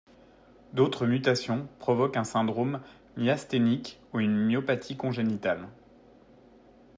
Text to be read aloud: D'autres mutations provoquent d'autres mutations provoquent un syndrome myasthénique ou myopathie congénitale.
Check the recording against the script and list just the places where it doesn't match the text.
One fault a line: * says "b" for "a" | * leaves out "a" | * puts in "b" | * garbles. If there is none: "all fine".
* leaves out "d'autres mutations provoquent"
* puts in "une"